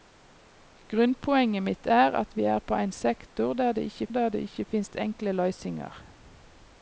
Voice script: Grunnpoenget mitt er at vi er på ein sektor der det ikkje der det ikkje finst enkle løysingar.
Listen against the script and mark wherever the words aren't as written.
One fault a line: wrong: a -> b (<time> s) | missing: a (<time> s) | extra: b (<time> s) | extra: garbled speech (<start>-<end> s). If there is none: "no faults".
no faults